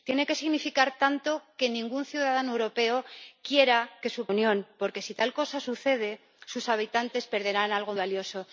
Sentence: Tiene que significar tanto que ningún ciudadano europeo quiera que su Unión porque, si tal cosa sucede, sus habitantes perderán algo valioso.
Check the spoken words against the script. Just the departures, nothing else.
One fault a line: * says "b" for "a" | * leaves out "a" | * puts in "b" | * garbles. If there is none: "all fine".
all fine